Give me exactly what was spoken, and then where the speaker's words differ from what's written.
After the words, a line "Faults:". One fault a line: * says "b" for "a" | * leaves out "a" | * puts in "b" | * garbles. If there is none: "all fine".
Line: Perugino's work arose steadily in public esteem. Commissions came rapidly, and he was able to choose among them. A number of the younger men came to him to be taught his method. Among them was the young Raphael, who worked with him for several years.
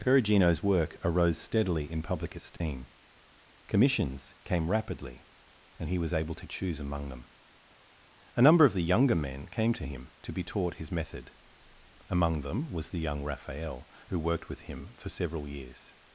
Perugino's work arose steadily in public esteem. Commissions came rapidly, and he was able to choose among them. A number of the younger men came to him to be taught his method. Among them was the young Raphael, who worked with him for several years.
Faults:
all fine